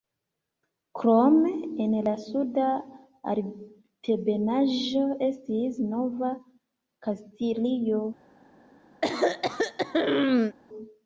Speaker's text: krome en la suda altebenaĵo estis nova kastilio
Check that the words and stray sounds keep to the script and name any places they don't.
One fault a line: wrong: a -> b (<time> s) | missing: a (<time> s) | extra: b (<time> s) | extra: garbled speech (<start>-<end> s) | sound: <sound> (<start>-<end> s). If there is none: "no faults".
sound: throat clearing (9.0-10.6 s)